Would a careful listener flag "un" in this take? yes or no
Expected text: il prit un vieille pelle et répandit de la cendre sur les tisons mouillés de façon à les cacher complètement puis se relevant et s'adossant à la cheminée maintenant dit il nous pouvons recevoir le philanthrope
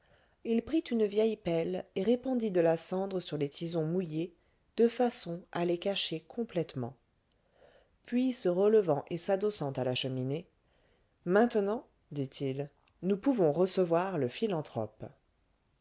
yes